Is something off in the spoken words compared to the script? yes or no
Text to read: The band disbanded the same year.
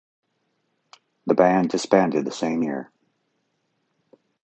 no